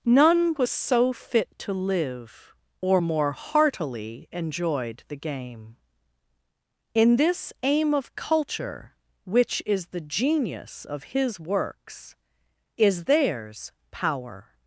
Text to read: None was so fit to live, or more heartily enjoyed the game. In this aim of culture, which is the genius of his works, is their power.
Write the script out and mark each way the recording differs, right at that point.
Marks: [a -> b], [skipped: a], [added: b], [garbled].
None was so fit to live, or more heartily enjoyed the game. In this aim of culture, which is the genius of his works, is [their -> theirs] power.